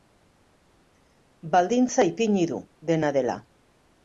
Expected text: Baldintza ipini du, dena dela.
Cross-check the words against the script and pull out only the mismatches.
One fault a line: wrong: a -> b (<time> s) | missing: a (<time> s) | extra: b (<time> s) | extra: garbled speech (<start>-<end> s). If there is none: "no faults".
no faults